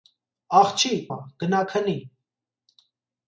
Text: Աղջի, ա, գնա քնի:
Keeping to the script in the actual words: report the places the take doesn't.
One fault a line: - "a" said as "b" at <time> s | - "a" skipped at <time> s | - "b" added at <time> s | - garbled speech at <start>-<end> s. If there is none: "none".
none